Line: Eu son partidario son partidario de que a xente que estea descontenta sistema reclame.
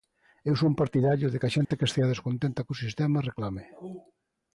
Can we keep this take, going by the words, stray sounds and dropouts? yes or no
no